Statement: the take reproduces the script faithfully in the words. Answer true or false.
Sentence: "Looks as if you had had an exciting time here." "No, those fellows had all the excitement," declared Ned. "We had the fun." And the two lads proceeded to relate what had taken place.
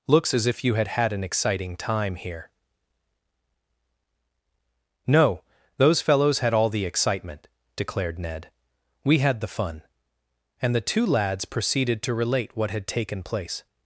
true